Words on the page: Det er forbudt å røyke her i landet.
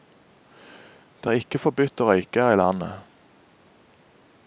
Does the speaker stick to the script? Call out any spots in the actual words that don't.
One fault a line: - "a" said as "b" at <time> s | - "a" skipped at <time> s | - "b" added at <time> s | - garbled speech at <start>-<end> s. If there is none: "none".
- "ikke" added at 1.4 s